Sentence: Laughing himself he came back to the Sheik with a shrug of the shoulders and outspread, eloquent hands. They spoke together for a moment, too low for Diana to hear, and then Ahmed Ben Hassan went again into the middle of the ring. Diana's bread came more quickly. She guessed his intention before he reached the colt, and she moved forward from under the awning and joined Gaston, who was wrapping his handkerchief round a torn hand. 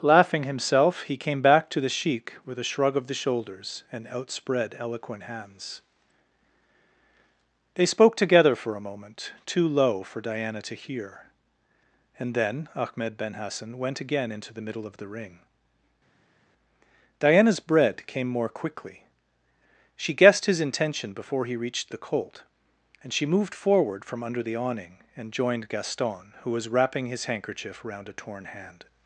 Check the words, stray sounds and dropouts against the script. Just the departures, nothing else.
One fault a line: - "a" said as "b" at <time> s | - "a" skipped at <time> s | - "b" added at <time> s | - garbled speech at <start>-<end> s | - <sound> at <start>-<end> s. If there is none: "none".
none